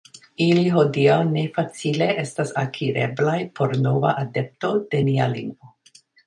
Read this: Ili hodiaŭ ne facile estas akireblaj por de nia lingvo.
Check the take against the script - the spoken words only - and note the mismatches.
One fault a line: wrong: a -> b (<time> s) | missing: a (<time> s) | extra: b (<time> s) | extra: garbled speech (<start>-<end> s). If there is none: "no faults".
extra: nova adepto (3.9 s)